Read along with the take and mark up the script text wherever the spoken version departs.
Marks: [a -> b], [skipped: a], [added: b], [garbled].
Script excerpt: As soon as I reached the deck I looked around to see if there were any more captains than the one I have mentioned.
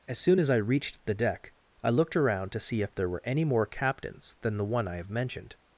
As soon as I reached the deck I looked around to see if there were any more captains than the one I have mentioned.